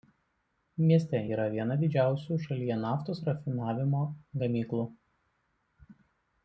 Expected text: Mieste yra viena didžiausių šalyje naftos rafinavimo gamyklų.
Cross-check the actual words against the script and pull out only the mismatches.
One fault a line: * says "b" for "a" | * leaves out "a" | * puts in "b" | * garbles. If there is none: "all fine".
all fine